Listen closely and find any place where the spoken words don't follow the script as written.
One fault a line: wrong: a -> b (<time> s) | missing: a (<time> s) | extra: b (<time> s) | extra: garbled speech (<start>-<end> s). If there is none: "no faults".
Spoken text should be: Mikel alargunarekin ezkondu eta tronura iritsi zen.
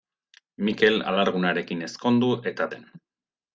missing: tronura iritsi (2.7 s)